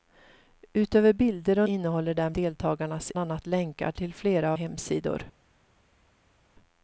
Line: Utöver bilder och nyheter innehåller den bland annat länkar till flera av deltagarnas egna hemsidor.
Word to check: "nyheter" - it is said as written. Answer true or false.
false